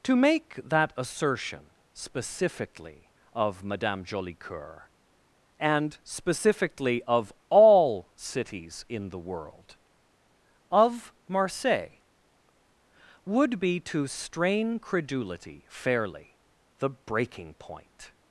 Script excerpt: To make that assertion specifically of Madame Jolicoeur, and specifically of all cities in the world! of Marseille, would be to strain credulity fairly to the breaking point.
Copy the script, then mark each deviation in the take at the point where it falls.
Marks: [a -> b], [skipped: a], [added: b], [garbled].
To make that assertion specifically of Madame Jolicoeur, and specifically of all cities in the world! of Marseille, would be to strain credulity fairly [skipped: to] the breaking point.